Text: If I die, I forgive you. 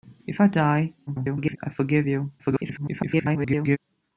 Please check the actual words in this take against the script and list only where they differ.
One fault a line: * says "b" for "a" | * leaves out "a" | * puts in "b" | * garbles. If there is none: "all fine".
* garbles
* garbles